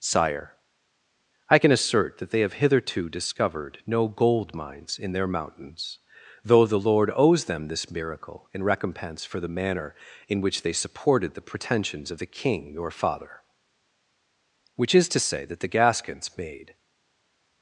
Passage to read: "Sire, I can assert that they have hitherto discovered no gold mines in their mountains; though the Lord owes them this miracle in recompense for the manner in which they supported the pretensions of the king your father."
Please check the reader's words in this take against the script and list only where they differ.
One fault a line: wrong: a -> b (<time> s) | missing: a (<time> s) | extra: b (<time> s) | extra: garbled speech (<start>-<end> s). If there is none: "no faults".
extra: Which is to say that the Gascons made (14.8 s)